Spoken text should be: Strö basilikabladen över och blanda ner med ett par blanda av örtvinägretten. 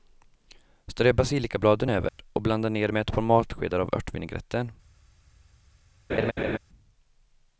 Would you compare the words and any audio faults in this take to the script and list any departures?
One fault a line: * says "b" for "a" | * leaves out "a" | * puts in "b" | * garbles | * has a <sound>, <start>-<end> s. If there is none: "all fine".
* has a dropout, 2.1-2.2 s
* says "matskedar" for "blanda"
* has a laugh, 6.1-6.6 s